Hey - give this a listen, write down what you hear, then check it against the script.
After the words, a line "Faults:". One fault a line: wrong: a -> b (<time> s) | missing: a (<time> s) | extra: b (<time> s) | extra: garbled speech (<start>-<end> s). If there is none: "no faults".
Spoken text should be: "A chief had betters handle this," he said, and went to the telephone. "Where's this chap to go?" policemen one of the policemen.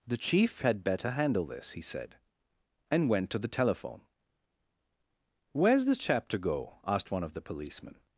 "The chief had better handle this," he said, and went to the telephone. "Where's this chap to go?" asked one of the policemen.
Faults:
wrong: A -> The (0.1 s)
wrong: betters -> better (0.8 s)
wrong: policemen -> asked (6.8 s)